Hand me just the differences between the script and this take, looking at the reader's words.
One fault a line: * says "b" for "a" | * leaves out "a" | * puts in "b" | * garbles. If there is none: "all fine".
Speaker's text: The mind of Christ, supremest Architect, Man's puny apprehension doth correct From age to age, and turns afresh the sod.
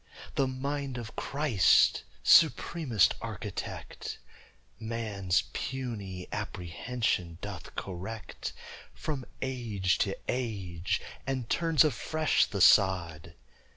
all fine